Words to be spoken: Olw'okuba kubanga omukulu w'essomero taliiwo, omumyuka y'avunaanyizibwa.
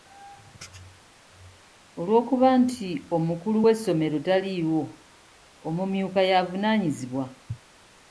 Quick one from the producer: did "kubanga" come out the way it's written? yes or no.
no